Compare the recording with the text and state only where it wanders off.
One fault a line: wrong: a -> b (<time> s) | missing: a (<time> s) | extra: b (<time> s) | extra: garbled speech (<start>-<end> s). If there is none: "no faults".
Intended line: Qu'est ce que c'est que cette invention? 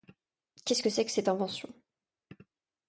no faults